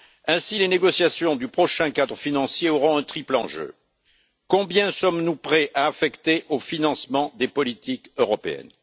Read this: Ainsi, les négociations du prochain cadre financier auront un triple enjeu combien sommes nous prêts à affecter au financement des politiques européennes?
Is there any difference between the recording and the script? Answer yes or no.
no